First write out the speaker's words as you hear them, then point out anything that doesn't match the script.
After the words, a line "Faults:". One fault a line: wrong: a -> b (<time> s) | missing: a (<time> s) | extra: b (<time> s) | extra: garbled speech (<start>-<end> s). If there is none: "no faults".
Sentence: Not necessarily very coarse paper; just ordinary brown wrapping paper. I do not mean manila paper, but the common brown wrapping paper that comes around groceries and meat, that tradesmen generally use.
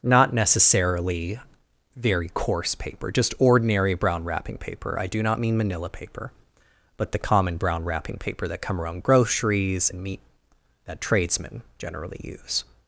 Not necessarily very coarse paper; just ordinary brown wrapping paper. I do not mean manila paper, but the common brown wrapping paper that come around groceries and meat, that tradesmen generally use.
Faults:
wrong: comes -> come (8.6 s)